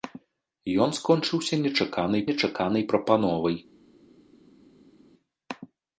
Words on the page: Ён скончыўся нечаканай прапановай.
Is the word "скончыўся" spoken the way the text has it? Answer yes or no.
yes